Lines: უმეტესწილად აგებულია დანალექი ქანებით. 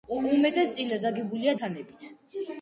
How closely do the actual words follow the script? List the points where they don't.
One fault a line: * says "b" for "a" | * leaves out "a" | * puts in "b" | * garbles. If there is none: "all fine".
* leaves out "დანალექი"